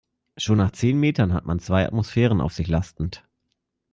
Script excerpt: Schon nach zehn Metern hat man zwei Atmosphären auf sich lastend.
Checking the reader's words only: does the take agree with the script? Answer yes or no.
yes